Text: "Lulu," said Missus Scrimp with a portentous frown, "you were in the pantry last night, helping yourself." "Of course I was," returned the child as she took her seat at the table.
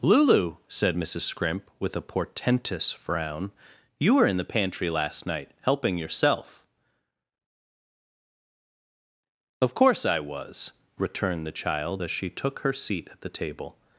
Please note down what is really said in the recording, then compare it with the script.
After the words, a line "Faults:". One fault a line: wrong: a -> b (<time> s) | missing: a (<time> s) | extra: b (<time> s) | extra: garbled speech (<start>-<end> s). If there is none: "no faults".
"Lulu," said Missus Scrimp with a portentous frown, "you were in the pantry last night, helping yourself." "Of course I was," returned the child as she took her seat at the table.
Faults:
no faults